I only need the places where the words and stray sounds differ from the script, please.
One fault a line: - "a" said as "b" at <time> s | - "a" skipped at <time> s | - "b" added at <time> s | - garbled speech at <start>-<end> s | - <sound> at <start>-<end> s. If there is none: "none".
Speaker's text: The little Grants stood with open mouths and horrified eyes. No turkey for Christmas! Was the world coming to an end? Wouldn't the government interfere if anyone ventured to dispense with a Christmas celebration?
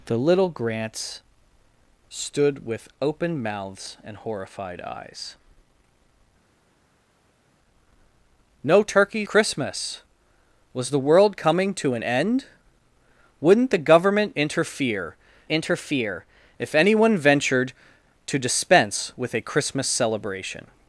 - "for" skipped at 9.3 s
- "interfere" added at 15.5 s